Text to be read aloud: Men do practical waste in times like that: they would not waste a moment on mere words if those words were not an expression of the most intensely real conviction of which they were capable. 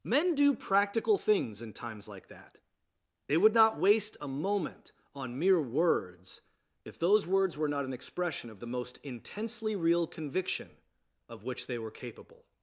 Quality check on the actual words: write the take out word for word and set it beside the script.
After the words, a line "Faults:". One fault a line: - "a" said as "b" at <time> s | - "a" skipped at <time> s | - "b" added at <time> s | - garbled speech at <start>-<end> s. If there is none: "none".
Men do practical things in times like that: they would not waste a moment on mere words if those words were not an expression of the most intensely real conviction of which they were capable.
Faults:
- "waste" said as "things" at 1.2 s